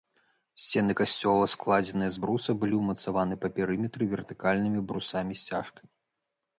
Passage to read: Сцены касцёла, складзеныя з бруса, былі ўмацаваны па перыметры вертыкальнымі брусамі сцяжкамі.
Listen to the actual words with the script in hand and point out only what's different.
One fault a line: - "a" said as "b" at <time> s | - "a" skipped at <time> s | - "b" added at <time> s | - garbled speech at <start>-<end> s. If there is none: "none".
none